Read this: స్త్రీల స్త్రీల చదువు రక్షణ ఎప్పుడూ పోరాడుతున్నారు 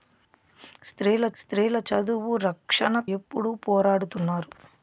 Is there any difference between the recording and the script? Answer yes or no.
no